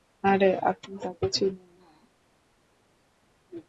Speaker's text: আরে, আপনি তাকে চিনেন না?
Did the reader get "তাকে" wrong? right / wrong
right